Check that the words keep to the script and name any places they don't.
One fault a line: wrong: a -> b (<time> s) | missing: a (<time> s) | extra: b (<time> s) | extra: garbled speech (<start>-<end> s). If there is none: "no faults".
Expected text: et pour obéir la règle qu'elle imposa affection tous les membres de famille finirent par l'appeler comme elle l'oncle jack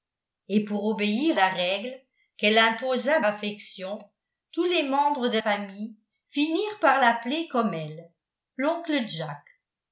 no faults